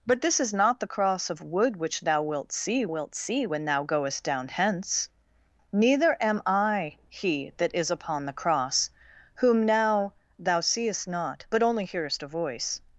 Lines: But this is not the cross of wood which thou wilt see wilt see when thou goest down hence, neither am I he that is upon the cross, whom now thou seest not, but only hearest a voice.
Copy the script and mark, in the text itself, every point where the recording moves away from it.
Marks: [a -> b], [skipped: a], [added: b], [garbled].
But this is not the cross of wood which thou wilt see wilt see when thou goest down hence, neither am I he that is upon the cross, whom now thou seest not, but only hearest a voice.